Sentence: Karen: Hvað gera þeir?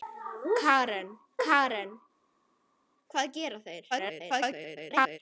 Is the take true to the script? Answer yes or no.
no